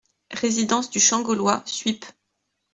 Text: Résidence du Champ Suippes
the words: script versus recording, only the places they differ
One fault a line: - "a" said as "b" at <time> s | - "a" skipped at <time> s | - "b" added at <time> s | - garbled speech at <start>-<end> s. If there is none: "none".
- "Gaulois" added at 1.2 s